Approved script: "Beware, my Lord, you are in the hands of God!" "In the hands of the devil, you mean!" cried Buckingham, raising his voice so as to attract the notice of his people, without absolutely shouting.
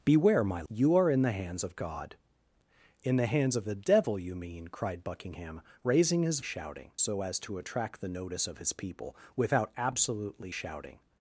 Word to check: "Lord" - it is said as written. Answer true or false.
false